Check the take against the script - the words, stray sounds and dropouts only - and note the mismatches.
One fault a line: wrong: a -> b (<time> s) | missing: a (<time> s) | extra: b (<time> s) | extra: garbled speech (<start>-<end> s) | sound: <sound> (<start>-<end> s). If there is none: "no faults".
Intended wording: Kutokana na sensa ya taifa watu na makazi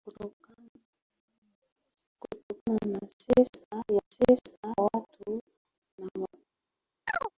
wrong: taifa -> sensa (4.1 s)
sound: chirp (7.1-7.3 s)